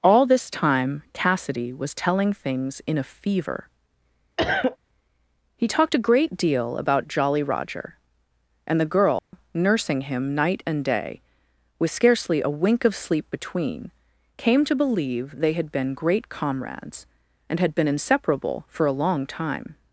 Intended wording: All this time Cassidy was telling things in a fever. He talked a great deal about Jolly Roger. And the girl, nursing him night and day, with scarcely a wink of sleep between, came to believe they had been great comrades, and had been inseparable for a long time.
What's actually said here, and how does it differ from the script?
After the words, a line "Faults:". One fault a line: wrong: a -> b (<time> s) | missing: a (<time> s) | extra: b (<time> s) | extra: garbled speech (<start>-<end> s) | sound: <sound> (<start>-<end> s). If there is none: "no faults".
All this time Cassidy was telling things in a fever. He talked a great deal about Jolly Roger. And the girl, nursing him night and day, with scarcely a wink of sleep between, came to believe they had been great comrades, and had been inseparable for a long time.
Faults:
sound: cough (4.4-4.8 s)
sound: dropout (9.2-9.3 s)